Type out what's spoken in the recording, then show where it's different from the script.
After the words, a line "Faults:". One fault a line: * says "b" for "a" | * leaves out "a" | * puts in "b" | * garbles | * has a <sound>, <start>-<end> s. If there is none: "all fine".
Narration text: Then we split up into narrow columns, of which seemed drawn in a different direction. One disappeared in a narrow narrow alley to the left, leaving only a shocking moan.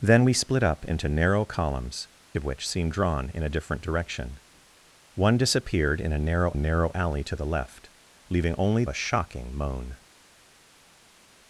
Then we split up into narrow columns, of which seemed drawn in a different direction. One disappeared in a narrow narrow alley to the left, leaving only a shocking moan.
Faults:
all fine